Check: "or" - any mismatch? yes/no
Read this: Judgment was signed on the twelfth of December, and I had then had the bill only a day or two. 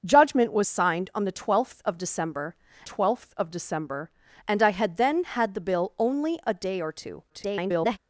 no